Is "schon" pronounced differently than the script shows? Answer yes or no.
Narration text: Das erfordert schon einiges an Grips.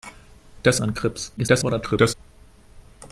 yes